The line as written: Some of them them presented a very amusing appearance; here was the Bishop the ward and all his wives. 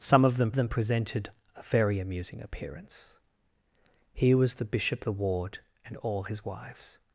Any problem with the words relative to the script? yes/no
no